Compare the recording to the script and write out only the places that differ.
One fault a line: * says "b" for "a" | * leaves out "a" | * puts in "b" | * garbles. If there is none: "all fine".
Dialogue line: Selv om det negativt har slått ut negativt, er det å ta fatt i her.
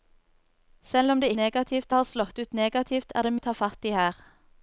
all fine